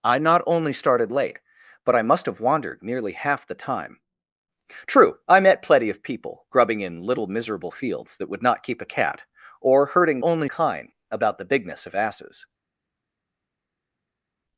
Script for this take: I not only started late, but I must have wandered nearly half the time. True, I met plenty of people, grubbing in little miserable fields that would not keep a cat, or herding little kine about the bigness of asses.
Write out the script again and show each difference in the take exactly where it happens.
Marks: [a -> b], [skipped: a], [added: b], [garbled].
I not only started late, but I must have wandered nearly half the time. True, I met plenty of people, grubbing in little miserable fields that would not keep a cat, or herding [little -> only] kine about the bigness of asses.